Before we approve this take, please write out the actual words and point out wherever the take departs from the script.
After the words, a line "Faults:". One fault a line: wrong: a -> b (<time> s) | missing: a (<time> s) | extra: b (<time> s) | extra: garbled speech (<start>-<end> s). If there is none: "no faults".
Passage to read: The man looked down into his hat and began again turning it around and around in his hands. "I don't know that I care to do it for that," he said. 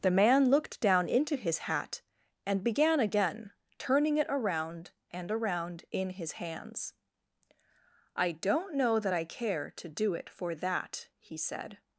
The man looked down into his hat and began again turning it around and around in his hands. "I don't know that I care to do it for that," he said.
Faults:
no faults